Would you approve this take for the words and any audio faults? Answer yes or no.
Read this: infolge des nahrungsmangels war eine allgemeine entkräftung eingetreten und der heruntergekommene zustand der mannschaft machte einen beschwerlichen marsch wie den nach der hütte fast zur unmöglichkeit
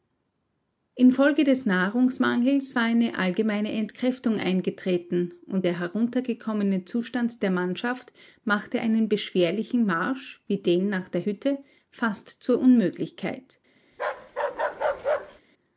no